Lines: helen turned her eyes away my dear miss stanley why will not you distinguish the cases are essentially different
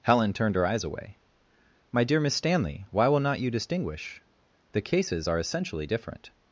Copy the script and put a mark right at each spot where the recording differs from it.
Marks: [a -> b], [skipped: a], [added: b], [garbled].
helen turned her eyes away my dear miss stanley why will not you distinguish the cases are essentially different